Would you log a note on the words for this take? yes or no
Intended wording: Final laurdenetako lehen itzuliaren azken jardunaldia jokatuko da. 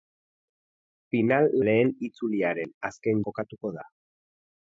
yes